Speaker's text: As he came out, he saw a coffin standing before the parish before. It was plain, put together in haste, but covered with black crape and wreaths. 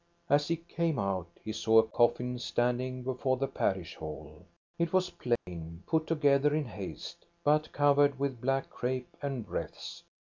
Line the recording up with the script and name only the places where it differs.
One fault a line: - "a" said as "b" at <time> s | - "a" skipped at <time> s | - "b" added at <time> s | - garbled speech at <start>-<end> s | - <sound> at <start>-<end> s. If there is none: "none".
- "before" said as "hall" at 4.0 s
- dropout at 5.4-5.5 s